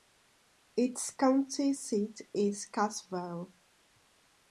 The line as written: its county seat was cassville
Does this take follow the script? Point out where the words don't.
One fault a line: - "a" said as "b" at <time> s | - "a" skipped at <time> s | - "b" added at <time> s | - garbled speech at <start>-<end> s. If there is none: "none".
- "was" said as "is" at 2.3 s